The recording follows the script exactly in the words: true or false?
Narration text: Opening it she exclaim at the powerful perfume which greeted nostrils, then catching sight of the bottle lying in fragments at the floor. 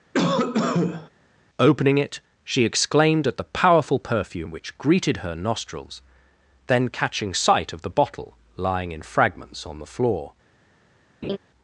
false